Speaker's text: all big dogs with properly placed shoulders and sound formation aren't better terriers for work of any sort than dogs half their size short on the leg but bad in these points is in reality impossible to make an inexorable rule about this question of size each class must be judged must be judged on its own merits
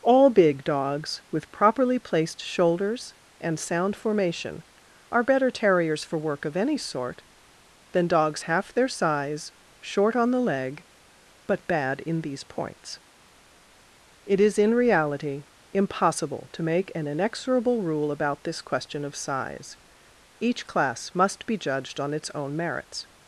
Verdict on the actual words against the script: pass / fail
fail